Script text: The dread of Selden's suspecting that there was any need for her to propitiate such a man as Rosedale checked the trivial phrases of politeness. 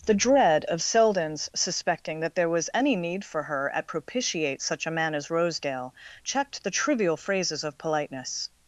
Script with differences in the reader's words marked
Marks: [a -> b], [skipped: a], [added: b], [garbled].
The dread of Selden's suspecting that there was any need for her [to -> at] propitiate such a man as Rosedale checked the trivial phrases of politeness.